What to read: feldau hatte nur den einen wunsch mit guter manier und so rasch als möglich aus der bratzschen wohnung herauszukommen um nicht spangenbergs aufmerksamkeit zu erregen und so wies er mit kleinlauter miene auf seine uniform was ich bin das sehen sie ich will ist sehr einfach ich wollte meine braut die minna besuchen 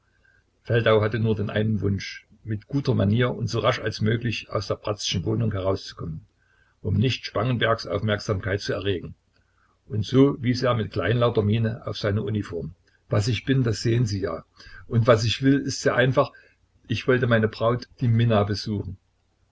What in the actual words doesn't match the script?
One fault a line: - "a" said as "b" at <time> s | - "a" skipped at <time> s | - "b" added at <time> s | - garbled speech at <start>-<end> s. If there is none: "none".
- "ja und was" added at 14.2 s